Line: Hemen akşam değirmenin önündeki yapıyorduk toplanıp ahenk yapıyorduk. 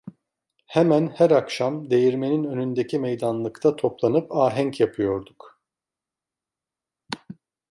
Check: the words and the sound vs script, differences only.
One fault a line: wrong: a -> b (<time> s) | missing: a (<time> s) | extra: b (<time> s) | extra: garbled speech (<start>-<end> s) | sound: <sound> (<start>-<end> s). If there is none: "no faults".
extra: her (1.1 s)
wrong: yapıyorduk -> meydanlıkta (3.0 s)